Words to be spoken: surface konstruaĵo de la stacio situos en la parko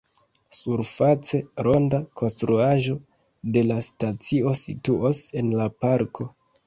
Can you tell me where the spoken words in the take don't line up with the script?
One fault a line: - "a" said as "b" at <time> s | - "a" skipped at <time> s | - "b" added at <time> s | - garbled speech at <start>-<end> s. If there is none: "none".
- "ronda" added at 1.7 s